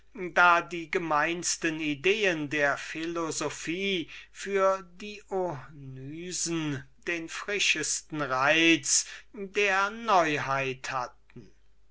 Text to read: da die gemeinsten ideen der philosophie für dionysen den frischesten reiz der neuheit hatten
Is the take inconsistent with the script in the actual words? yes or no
no